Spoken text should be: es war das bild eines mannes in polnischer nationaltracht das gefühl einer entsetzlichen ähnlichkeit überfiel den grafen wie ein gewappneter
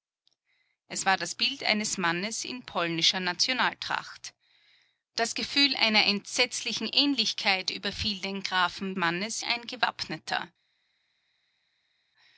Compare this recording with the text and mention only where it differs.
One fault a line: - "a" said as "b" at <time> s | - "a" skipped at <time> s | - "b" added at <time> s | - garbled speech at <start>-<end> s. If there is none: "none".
- "wie" said as "mannes" at 9.0 s